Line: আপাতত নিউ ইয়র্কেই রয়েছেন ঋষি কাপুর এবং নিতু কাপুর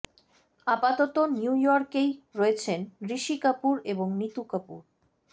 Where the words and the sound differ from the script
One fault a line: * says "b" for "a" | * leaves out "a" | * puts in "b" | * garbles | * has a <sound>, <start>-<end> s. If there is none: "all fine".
all fine